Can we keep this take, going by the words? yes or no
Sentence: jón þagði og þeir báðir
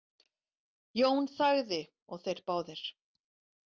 yes